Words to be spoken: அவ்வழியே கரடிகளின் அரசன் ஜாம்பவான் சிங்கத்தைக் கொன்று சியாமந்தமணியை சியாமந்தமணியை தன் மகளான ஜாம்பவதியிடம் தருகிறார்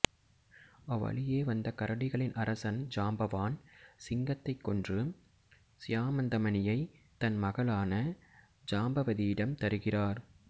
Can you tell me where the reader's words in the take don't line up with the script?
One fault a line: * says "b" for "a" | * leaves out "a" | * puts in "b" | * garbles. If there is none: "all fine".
* puts in "வந்த"
* leaves out "சியாமந்தமணியை"